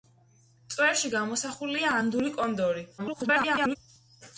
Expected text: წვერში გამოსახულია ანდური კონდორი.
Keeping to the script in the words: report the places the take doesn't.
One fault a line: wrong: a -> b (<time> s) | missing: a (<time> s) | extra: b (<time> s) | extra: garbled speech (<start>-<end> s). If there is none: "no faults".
extra: garbled speech (3.0-3.8 s)